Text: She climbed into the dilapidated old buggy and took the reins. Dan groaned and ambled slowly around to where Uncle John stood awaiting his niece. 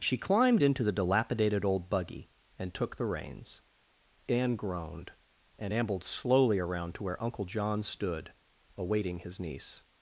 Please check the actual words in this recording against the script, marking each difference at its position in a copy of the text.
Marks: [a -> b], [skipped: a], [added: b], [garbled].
She climbed into the dilapidated old buggy and took the reins. [Dan -> Anne] groaned and ambled slowly around to where Uncle John stood awaiting his niece.